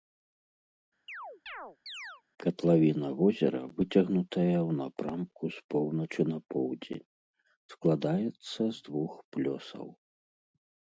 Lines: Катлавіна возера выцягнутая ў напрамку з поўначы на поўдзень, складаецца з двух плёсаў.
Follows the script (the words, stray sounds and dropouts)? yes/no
no